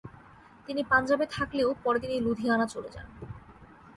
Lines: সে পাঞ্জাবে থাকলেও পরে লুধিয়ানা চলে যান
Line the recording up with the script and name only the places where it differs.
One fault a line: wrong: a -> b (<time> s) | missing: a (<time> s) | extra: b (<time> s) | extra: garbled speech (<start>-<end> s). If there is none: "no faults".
wrong: সে -> তিনি (0.7 s)
extra: তিনি (2.0 s)